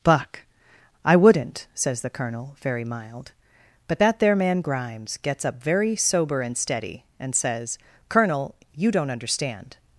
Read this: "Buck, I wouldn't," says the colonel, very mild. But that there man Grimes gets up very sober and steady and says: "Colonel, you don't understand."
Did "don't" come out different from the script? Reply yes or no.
no